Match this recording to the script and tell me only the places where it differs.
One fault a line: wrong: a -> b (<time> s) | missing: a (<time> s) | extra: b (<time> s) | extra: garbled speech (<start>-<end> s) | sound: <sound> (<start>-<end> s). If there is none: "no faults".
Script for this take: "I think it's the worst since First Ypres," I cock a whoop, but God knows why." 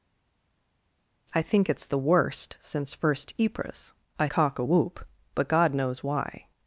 no faults